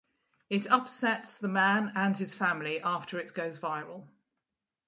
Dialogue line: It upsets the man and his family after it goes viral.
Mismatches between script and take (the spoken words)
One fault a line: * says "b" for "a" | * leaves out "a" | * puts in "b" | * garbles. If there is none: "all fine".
all fine